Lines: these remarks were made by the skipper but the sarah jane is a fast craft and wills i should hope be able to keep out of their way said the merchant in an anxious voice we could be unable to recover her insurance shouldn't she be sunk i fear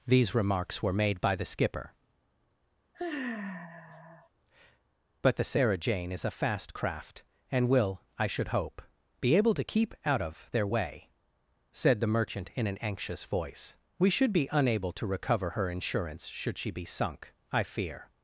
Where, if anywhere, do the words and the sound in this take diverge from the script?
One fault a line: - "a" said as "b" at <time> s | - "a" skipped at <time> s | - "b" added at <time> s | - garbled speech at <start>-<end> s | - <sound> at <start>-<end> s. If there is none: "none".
- sigh at 2.9-4.3 s
- "wills" said as "will" at 7.7 s
- "could" said as "should" at 14.1 s
- "shouldn't" said as "should" at 16.3 s